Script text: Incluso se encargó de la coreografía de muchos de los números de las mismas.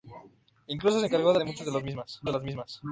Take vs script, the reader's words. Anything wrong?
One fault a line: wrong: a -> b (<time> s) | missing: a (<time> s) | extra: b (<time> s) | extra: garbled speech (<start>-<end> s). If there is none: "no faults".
missing: la coreografía (1.4 s)
wrong: números -> mismas (1.8 s)